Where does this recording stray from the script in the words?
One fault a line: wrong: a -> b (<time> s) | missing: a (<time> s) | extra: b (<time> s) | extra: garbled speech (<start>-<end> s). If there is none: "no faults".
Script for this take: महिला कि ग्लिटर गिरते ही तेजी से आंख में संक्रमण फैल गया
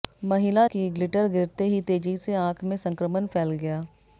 no faults